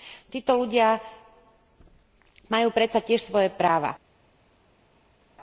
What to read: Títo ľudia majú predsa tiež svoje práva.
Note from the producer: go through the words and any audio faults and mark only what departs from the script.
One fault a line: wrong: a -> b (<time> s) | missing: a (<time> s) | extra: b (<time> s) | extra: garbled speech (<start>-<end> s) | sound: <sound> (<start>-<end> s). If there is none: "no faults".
no faults